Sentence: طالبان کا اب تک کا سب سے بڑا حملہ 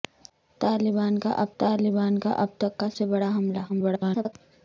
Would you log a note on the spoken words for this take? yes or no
yes